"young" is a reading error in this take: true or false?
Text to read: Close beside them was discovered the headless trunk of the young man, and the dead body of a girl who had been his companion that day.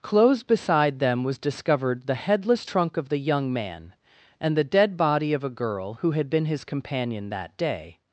false